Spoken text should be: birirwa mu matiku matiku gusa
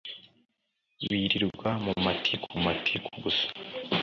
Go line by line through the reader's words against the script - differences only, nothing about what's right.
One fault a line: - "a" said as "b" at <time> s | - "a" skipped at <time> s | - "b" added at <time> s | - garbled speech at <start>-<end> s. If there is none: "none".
none